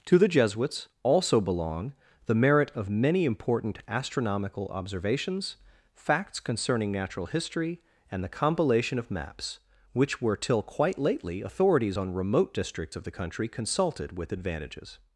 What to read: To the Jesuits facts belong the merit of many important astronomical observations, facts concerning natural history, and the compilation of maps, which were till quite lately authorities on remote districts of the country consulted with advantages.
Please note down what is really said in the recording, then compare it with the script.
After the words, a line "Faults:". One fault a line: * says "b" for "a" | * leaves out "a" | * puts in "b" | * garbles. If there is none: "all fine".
To the Jesuits also belong the merit of many important astronomical observations, facts concerning natural history, and the compilation of maps, which were till quite lately authorities on remote districts of the country consulted with advantages.
Faults:
* says "also" for "facts"